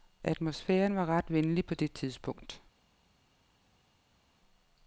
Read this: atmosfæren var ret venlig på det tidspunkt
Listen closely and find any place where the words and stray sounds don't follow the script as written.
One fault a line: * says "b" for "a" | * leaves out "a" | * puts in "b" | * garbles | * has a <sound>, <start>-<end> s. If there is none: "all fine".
all fine